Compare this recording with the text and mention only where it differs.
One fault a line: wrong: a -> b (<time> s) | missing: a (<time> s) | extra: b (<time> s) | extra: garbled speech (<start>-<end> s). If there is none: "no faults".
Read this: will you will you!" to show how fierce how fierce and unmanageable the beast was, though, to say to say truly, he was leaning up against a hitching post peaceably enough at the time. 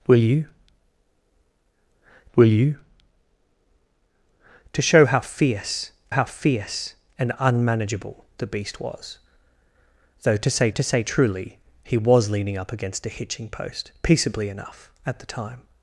no faults